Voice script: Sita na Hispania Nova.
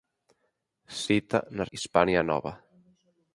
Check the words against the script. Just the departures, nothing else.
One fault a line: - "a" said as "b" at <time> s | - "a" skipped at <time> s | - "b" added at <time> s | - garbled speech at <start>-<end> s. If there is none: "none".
none